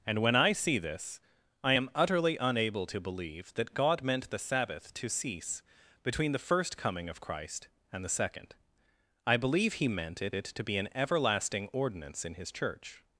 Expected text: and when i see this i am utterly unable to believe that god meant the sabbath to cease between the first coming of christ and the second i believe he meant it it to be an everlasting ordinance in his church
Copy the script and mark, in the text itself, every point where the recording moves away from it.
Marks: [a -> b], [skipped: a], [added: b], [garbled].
and when i see this i am utterly unable to believe that god meant the sabbath to cease between the first coming of christ and the second i believe he meant it it to be an everlasting ordinance in his church